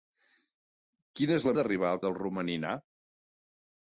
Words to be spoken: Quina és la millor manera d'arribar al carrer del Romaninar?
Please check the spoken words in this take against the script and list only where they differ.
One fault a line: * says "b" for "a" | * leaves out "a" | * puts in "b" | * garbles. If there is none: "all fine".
* leaves out "millor manera"
* leaves out "carrer"